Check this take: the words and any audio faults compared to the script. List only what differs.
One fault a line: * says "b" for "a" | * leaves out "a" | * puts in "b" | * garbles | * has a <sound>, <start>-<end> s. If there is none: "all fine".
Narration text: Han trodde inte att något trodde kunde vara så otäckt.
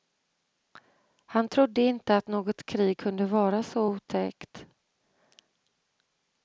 * says "krig" for "trodde"